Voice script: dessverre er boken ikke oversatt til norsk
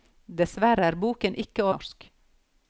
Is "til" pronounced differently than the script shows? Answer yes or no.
yes